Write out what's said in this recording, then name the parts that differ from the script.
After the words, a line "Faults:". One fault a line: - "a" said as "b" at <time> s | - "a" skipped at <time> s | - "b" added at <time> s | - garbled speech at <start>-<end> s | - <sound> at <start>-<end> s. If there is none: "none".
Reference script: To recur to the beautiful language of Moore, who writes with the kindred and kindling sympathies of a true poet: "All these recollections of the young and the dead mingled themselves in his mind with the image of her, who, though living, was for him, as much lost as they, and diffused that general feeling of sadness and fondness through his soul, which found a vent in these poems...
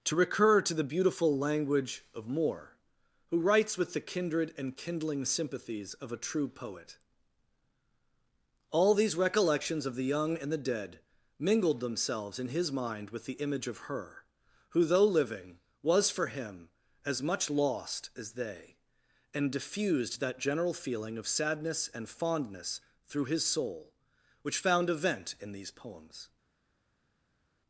To recur to the beautiful language of Moore, who writes with the kindred and kindling sympathies of a true poet: "All these recollections of the young and the dead mingled themselves in his mind with the image of her, who, though living, was for him, as much lost as they, and diffused that general feeling of sadness and fondness through his soul, which found a vent in these poems...
Faults:
none